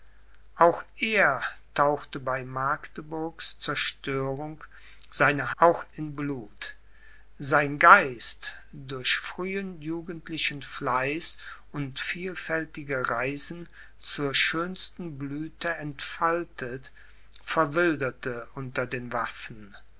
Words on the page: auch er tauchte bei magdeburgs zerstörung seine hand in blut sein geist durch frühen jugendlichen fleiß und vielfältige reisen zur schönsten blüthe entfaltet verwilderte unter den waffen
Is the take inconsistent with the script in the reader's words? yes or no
yes